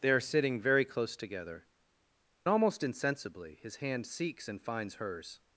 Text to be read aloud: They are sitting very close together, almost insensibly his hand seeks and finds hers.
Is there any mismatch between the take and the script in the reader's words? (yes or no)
no